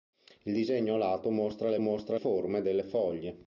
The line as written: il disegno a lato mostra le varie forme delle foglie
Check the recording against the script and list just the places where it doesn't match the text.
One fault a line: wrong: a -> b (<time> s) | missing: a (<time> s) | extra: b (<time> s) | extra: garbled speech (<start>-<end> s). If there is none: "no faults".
wrong: varie -> mostra (1.8 s)